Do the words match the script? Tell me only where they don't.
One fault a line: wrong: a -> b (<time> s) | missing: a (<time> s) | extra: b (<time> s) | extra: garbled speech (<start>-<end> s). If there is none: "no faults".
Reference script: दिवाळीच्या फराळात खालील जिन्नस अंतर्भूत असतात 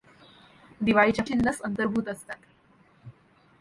missing: फराळात खालील (1.2 s)